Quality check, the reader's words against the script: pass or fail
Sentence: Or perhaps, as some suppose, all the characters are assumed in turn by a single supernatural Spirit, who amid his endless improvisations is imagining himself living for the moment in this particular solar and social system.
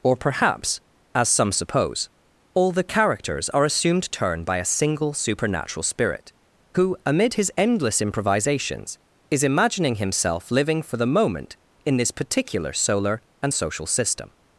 fail